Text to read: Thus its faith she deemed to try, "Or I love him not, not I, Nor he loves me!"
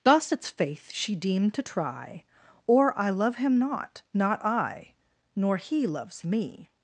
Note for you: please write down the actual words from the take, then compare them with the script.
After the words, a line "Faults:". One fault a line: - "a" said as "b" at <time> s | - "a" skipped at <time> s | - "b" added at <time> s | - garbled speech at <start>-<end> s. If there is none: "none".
Thus its faith she deemed to try, "Or I love him not, not I, Nor he loves me!"
Faults:
none